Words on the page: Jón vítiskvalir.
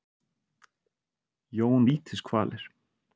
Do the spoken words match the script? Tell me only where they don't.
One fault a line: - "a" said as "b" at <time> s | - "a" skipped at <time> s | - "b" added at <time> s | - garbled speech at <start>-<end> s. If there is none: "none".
none